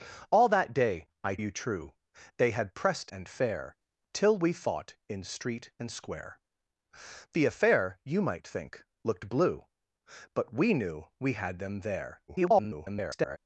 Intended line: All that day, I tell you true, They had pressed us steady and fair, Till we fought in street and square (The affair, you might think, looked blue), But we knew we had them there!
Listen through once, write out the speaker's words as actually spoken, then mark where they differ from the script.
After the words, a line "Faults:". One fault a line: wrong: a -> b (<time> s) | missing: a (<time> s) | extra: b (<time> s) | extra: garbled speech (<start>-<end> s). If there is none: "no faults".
All that day, I you true, They had pressed and fair, Till we fought in street and square (The affair, you might think, looked blue), But we knew we had them there! [garbled]
Faults:
missing: tell (1.4 s)
missing: us steady (3.1 s)
extra: garbled speech (12.3-13.4 s)